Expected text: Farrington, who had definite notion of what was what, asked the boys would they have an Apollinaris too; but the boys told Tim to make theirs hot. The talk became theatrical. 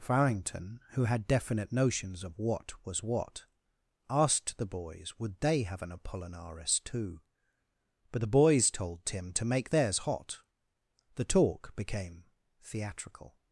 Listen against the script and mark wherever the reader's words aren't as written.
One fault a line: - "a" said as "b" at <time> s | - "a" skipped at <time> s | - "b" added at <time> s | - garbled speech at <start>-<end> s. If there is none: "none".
- "notion" said as "notions" at 1.7 s